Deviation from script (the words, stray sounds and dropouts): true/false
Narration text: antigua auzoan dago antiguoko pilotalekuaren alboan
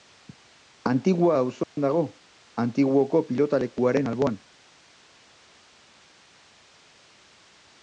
true